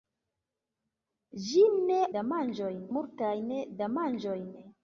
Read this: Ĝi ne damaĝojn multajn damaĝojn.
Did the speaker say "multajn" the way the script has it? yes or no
yes